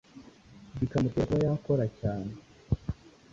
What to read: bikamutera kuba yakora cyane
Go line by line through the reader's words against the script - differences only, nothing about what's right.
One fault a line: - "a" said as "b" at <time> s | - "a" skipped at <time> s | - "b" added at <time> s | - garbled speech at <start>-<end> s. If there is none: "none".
none